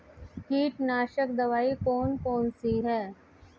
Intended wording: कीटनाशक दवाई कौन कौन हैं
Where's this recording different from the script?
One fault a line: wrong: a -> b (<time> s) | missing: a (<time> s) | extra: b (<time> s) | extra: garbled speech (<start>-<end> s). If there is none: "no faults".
extra: सी (2.5 s)